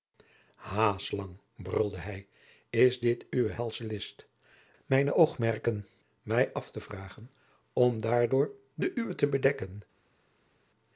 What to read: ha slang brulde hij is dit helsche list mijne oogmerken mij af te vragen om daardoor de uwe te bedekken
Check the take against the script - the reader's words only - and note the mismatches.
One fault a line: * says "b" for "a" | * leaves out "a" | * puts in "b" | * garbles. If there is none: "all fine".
* puts in "uwe"